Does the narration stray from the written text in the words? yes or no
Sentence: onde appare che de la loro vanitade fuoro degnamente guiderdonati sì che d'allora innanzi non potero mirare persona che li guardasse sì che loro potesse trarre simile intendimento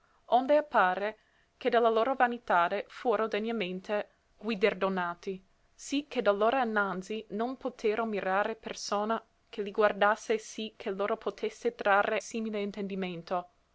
no